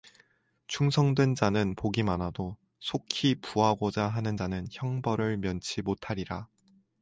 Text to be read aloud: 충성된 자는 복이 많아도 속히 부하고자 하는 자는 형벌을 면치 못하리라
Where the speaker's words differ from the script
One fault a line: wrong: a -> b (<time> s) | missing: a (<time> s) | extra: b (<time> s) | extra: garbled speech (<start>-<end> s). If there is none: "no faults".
no faults